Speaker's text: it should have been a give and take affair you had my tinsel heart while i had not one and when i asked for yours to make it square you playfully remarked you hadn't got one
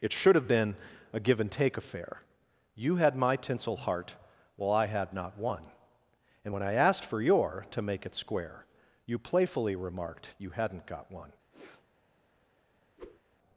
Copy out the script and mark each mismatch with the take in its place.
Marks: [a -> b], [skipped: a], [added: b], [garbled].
it should have been a give and take affair you had my tinsel heart while i had not one and when i asked for [yours -> your] to make it square you playfully remarked you hadn't got one